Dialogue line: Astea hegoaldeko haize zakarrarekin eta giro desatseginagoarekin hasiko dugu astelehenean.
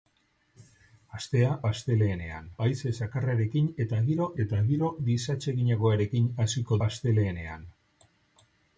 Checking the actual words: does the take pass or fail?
fail